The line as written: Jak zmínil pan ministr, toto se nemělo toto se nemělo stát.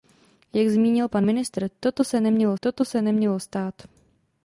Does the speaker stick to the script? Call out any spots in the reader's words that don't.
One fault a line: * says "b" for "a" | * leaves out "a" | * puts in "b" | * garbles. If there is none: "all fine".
all fine